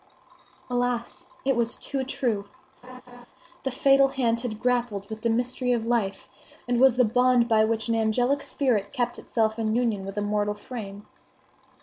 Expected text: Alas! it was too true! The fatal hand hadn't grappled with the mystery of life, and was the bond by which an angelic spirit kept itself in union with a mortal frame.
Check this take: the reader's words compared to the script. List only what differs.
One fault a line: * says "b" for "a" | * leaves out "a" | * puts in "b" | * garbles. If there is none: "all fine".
* says "had" for "hadn't"